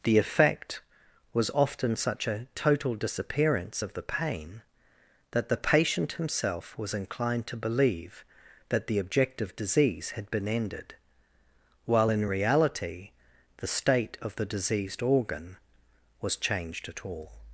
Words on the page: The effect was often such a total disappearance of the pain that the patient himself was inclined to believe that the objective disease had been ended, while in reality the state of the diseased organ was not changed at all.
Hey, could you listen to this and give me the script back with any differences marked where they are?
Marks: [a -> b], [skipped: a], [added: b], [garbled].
The effect was often such a total disappearance of the pain that the patient himself was inclined to believe that the objective disease had been ended, while in reality the state of the diseased organ was [skipped: not] changed at all.